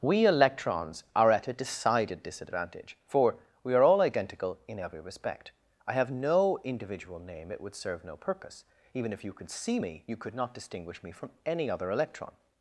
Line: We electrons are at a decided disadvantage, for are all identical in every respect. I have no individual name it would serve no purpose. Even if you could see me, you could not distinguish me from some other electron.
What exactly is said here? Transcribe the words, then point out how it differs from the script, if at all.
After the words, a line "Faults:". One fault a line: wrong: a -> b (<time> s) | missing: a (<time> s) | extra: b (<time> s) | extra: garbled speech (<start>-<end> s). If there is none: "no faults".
We electrons are at a decided disadvantage, for we are all identical in every respect. I have no individual name it would serve no purpose. Even if you could see me, you could not distinguish me from any other electron.
Faults:
extra: we (3.6 s)
wrong: some -> any (11.5 s)